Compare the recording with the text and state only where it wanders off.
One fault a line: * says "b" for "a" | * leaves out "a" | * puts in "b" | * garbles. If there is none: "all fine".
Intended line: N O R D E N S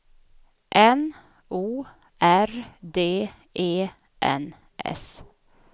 all fine